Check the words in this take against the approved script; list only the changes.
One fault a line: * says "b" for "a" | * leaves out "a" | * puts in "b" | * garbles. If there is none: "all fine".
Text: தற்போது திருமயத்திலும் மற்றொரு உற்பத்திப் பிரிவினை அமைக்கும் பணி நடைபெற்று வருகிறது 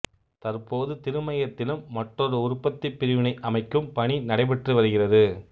all fine